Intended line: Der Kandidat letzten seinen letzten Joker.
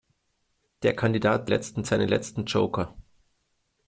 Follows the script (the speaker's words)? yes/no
yes